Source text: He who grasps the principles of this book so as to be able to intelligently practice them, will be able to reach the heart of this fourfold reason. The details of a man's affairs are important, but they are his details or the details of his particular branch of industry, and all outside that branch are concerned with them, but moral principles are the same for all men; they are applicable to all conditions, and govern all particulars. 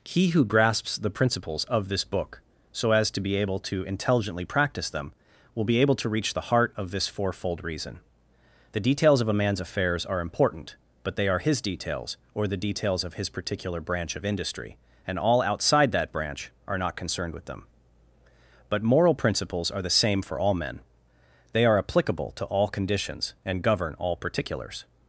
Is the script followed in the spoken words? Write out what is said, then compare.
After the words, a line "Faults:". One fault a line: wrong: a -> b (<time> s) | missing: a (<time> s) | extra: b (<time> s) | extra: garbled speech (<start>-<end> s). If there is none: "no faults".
He who grasps the principles of this book so as to be able to intelligently practice them, will be able to reach the heart of this fourfold reason. The details of a man's affairs are important, but they are his details or the details of his particular branch of industry, and all outside that branch are not concerned with them, but moral principles are the same for all men; they are applicable to all conditions, and govern all particulars.
Faults:
extra: not (16.8 s)